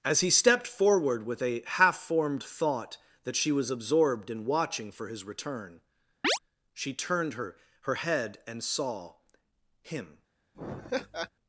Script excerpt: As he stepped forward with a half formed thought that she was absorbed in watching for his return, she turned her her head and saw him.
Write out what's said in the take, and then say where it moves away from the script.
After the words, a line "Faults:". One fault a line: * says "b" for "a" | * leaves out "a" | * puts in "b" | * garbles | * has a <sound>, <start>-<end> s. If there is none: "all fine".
As he stepped forward with a half formed thought that she was absorbed in watching for his return, she turned her her head and saw him.
Faults:
* has a chirp, 6.2-6.4 s
* has a laugh, 10.5-11.3 s